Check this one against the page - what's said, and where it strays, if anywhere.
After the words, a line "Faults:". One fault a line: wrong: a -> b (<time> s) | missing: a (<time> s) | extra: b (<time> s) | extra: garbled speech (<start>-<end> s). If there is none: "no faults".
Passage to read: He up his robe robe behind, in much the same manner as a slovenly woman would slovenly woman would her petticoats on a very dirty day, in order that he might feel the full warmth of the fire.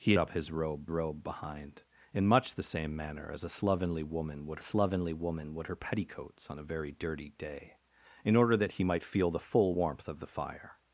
He up his robe robe behind, in much the same manner as a slovenly woman would slovenly woman would her petticoats on a very dirty day, in order that he might feel the full warmth of the fire.
Faults:
no faults